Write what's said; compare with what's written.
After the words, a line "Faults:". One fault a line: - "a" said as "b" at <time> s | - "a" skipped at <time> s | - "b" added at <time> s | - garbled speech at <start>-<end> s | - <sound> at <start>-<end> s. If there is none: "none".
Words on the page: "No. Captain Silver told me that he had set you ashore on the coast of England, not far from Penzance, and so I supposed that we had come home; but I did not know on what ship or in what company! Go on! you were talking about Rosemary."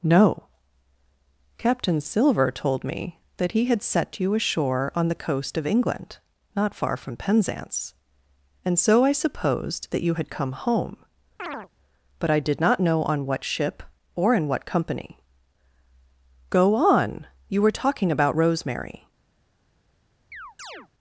"No. Captain Silver told me that he had set you ashore on the coast of England, not far from Penzance, and so I supposed that you had come home; but I did not know on what ship or in what company! Go on! you were talking about Rosemary."
Faults:
- "we" said as "you" at 10.0 s
- chirp at 11.4-11.7 s
- chirp at 20.3-20.9 s